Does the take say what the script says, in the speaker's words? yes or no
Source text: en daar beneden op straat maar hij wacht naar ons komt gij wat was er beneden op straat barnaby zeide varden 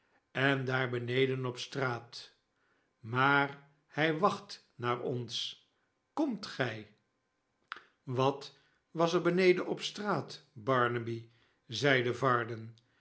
yes